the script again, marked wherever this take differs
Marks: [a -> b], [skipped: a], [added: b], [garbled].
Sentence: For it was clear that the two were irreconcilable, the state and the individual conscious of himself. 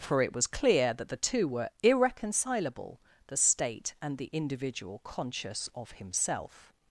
For it was clear that the two were irreconcilable, the state and the individual conscious of himself.